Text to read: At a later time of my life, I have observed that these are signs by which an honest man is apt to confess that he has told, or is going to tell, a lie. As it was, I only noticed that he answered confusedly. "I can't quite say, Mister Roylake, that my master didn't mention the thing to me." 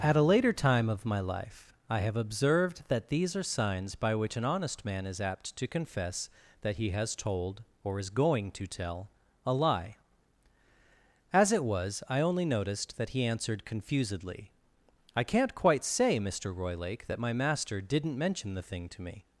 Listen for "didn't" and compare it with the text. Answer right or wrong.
right